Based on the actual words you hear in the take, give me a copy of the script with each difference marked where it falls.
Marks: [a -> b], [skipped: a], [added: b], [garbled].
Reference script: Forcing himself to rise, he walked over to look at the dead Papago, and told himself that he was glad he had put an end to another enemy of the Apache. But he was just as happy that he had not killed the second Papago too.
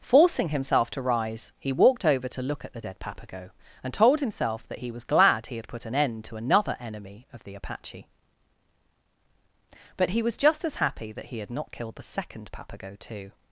Forcing himself to rise, he walked over to look at the dead Papago, and told himself that he was glad he had put an end to another enemy of the Apache. But he was just as happy that he had not killed the second Papago too.